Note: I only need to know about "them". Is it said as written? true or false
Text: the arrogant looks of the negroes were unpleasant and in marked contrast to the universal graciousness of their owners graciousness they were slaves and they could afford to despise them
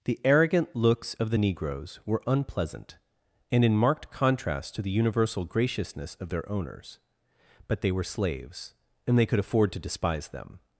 true